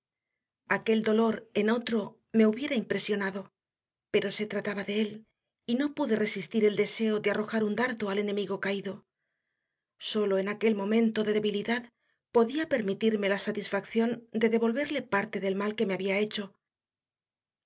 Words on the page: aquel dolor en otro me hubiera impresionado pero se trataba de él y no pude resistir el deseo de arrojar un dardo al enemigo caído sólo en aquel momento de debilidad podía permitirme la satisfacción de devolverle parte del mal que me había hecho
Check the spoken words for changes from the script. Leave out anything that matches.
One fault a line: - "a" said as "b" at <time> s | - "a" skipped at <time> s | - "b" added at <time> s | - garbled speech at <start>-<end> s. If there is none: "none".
none